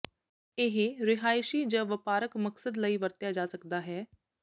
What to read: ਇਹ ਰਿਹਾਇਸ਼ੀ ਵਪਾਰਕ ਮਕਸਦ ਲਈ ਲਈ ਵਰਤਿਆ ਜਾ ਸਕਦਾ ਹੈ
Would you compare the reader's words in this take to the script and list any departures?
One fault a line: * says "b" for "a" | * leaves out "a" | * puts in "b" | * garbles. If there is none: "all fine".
* puts in "ਜ"
* leaves out "ਲਈ"